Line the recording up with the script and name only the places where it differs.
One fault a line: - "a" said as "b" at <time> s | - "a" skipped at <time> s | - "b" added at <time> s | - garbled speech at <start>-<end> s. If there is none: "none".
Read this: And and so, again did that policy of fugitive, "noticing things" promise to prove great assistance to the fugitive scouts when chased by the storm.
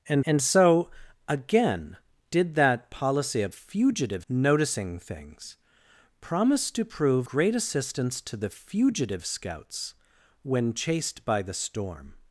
none